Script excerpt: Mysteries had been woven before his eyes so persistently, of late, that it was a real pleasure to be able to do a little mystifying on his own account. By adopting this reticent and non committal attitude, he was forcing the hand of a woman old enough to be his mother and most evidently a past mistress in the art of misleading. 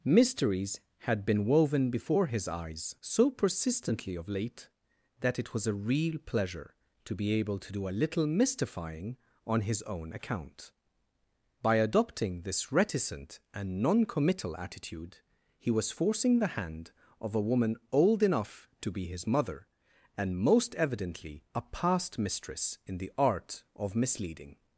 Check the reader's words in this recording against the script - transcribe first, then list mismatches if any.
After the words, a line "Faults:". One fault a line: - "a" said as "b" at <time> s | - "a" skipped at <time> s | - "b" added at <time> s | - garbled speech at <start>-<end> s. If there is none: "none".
Mysteries had been woven before his eyes so persistently, of late, that it was a real pleasure to be able to do a little mystifying on his own account. By adopting this reticent and non committal attitude, he was forcing the hand of a woman old enough to be his mother and most evidently a past mistress in the art of misleading.
Faults:
none